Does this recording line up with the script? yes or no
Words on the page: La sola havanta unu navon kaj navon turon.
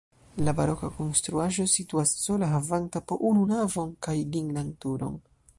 no